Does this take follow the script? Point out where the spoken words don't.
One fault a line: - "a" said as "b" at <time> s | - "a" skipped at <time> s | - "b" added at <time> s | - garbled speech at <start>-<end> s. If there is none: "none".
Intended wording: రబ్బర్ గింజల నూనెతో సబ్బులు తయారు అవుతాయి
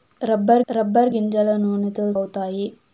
- "రబ్బర్" added at 0.7 s
- "సబ్బులు తయారు" skipped at 2.0 s